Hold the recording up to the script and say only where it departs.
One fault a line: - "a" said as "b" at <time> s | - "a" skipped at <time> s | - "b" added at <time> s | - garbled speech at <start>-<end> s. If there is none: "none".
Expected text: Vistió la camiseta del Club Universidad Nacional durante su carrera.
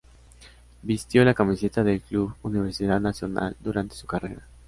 none